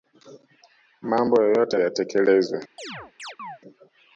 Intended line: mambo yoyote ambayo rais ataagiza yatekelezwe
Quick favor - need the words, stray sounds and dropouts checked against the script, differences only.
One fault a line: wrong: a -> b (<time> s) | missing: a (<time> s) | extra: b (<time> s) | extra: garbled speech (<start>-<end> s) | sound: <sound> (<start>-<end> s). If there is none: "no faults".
missing: ambayo rais ataagiza (1.8 s)
sound: chirp (2.8-3.6 s)